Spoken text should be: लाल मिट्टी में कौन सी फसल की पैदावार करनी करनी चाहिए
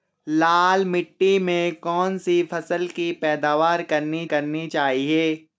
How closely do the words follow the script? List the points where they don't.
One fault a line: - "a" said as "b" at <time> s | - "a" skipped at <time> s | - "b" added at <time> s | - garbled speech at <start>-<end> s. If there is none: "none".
none